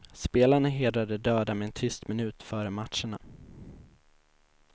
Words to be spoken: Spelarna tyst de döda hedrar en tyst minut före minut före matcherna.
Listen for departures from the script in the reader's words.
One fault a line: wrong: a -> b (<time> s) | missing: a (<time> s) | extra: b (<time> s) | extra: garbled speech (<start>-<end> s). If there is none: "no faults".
wrong: tyst -> hedrar (0.7 s)
wrong: hedrar -> med (1.5 s)
missing: minut före (2.7 s)